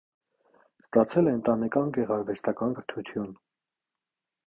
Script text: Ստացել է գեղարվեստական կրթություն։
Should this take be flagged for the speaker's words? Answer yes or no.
yes